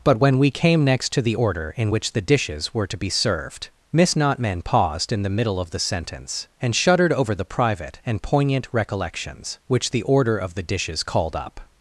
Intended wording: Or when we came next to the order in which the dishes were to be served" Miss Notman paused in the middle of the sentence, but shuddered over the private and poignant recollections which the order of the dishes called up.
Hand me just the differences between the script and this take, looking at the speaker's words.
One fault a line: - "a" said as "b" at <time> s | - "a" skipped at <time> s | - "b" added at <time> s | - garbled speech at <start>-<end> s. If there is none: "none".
- "Or" said as "But" at 0.0 s
- "but" said as "and" at 6.6 s